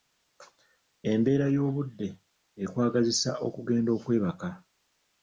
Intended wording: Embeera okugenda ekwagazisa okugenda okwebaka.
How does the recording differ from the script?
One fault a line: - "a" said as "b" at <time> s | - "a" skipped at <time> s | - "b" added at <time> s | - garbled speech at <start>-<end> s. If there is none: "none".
- "okugenda" said as "y'obudde" at 1.6 s